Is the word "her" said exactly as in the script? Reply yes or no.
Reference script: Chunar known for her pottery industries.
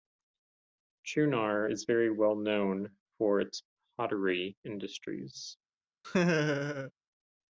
no